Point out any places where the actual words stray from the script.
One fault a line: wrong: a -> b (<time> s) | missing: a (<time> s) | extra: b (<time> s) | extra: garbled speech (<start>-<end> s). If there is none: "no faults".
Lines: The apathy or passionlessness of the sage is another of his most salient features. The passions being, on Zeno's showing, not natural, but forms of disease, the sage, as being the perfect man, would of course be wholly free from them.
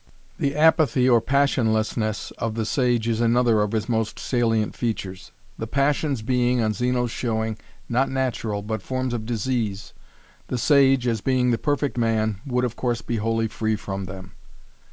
no faults